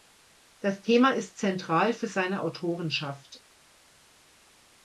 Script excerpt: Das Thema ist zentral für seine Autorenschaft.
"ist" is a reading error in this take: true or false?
false